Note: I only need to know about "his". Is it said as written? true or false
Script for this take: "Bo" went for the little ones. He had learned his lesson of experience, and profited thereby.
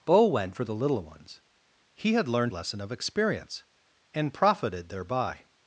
false